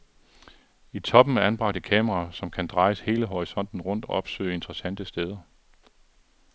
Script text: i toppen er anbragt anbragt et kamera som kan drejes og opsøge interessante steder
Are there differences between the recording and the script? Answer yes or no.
yes